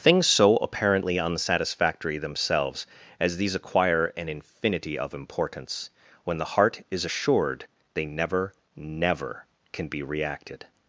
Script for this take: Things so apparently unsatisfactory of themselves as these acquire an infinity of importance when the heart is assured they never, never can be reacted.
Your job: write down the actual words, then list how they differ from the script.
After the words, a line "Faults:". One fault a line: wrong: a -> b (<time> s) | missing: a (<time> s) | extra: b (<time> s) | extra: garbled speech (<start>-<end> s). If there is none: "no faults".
Things so apparently unsatisfactory themselves as these acquire an infinity of importance when the heart is assured they never, never can be reacted.
Faults:
missing: of (2.2 s)